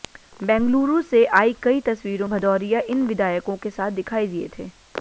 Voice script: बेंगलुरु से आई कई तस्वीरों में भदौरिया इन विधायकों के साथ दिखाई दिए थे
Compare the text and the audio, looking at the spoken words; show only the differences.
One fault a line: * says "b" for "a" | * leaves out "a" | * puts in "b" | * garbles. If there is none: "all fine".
* leaves out "में"